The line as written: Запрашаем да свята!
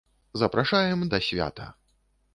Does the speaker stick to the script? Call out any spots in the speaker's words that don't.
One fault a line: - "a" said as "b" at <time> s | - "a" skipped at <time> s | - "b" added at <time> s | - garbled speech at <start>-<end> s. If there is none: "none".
none